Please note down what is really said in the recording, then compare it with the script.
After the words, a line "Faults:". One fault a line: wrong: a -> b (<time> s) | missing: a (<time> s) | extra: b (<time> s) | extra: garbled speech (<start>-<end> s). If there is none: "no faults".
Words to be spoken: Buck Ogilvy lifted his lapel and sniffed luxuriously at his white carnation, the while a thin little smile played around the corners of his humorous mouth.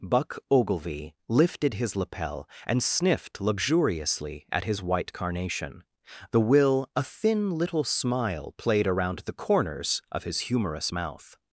Buck Ogilvy lifted his lapel and sniffed luxuriously at his white carnation, the will a thin little smile played around the corners of his humorous mouth.
Faults:
wrong: while -> will (6.4 s)